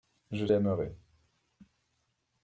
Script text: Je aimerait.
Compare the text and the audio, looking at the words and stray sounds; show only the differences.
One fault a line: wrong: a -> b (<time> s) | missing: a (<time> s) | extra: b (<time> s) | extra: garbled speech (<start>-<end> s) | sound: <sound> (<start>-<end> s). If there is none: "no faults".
no faults